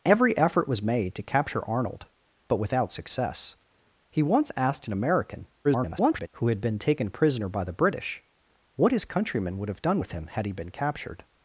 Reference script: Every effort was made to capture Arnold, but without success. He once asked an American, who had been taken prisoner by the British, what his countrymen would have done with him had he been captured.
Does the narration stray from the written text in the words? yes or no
yes